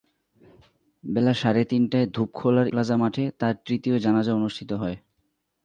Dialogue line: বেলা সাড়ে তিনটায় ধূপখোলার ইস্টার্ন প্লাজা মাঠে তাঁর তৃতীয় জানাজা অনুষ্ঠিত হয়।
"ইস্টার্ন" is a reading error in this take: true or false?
true